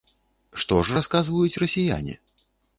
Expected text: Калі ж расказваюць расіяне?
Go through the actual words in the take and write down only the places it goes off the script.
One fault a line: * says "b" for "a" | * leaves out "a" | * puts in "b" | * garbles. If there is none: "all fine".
* says "Што" for "Калі"